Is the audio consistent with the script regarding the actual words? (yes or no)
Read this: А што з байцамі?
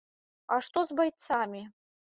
yes